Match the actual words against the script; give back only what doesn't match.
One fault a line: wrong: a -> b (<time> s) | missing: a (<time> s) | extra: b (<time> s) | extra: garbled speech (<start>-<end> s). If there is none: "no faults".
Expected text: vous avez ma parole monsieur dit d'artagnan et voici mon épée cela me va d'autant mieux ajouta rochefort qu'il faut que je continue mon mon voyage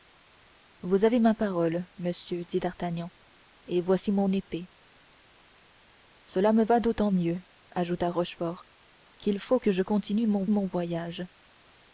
no faults